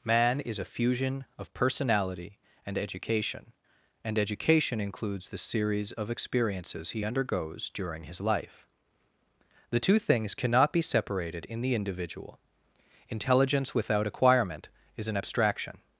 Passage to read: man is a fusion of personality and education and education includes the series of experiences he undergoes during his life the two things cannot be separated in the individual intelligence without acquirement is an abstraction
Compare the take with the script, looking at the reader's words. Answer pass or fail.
pass